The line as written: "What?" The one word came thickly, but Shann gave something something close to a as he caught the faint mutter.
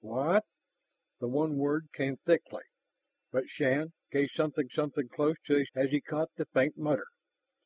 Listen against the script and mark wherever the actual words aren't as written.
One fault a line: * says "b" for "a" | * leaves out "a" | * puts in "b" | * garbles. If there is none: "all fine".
all fine